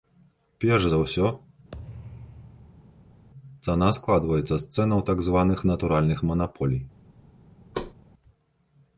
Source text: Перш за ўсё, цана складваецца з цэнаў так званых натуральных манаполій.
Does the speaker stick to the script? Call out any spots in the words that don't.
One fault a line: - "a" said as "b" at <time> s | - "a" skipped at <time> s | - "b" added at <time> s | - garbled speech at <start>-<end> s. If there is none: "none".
none